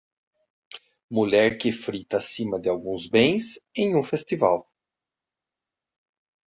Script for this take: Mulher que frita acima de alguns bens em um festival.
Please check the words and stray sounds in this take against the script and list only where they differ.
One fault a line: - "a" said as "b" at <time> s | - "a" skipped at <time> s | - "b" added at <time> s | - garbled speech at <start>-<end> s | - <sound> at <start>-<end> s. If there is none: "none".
none